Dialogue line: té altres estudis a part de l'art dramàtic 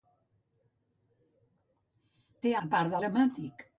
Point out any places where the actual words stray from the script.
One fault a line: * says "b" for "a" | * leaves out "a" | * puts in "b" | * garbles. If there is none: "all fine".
* leaves out "altres estudis"
* leaves out "l'art"